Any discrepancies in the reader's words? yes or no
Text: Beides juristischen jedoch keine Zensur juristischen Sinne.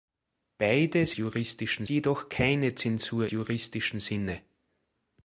no